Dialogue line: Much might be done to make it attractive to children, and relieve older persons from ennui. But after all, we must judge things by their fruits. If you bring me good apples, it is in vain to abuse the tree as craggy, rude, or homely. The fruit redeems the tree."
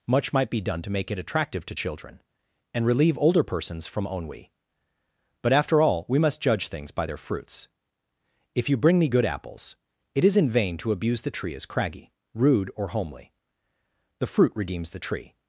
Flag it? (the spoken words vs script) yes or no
no